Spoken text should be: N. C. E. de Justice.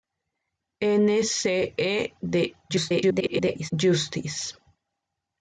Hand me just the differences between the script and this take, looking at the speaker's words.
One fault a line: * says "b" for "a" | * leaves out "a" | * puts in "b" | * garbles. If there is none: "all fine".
* garbles